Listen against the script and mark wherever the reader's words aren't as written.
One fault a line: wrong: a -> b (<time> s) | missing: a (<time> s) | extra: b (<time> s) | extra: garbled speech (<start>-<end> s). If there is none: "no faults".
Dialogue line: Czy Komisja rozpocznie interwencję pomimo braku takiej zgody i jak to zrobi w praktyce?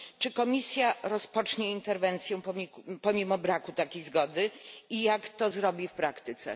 no faults